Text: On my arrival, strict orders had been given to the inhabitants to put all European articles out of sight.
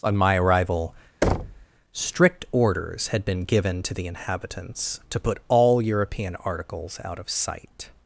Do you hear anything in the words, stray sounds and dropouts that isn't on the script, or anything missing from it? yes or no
yes